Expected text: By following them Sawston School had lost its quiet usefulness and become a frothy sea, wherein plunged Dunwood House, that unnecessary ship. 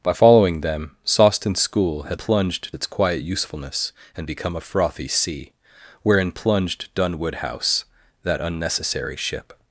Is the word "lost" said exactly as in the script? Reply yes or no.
no